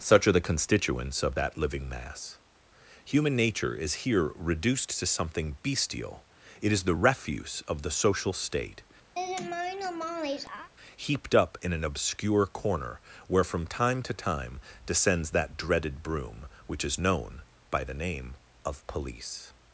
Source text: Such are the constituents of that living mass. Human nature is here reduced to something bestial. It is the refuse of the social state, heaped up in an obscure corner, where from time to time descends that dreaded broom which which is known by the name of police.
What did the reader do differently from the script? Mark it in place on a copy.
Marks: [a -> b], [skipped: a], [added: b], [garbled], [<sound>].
Such are the constituents of that living mass. Human nature is here reduced to something bestial. It is the refuse of the social state, [laugh] heaped up in an obscure corner, where from time to time descends that dreaded broom which [skipped: which] is known by the name of police.